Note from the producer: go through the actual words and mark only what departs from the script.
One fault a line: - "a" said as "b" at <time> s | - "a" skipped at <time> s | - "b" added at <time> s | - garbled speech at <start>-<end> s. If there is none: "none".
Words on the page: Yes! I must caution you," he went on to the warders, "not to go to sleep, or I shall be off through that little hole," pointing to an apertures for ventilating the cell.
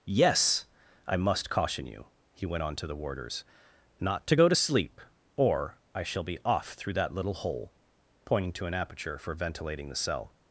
- "apertures" said as "aperture" at 8.7 s